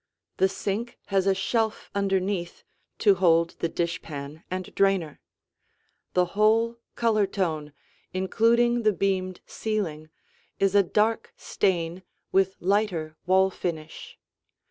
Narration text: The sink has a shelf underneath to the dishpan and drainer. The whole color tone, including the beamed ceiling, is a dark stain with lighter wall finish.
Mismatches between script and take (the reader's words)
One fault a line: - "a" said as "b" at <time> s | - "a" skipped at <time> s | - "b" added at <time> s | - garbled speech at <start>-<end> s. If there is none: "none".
- "hold" added at 3.1 s